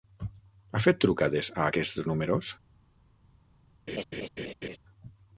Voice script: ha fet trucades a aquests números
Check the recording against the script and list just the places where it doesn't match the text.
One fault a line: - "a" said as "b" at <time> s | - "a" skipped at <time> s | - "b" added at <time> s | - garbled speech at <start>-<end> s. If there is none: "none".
none